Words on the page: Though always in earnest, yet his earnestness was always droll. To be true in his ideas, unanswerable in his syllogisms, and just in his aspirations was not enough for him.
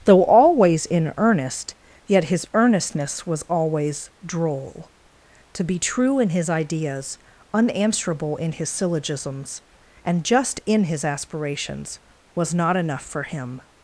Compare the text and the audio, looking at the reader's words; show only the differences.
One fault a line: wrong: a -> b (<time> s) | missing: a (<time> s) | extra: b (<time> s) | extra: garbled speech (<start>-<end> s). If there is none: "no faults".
no faults